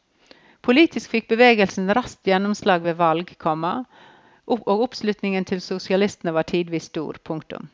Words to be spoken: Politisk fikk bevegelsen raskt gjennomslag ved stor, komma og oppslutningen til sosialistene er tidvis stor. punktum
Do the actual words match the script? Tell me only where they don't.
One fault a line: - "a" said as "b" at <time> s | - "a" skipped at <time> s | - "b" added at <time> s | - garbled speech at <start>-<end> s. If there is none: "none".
- "stor" said as "valg" at 3.0 s
- "er" said as "var" at 6.3 s